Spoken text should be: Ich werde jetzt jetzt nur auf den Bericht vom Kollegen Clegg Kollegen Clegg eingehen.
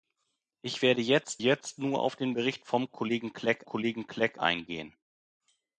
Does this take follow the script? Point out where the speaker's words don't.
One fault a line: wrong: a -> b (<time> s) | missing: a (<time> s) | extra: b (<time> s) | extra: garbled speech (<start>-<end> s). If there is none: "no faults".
no faults